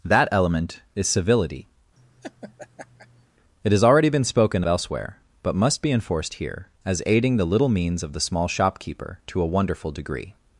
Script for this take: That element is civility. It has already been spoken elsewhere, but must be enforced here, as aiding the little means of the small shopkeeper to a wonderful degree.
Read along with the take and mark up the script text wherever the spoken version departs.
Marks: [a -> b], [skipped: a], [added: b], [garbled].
That element is civility. It has already been spoken elsewhere, but must be enforced here, as aiding the little means of the small shopkeeper to a wonderful degree.